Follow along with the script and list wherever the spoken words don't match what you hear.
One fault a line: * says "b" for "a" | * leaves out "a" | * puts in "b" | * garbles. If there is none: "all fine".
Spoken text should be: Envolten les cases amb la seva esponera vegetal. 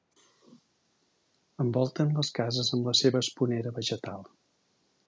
all fine